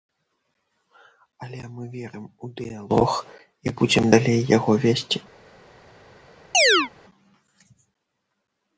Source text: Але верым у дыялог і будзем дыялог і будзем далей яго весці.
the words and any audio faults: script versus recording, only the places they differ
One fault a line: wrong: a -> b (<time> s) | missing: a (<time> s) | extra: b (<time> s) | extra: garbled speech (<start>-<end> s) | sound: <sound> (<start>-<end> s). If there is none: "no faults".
extra: мы (1.7 s)
missing: дыялог і будзем (4.1 s)
sound: chirp (6.5-6.9 s)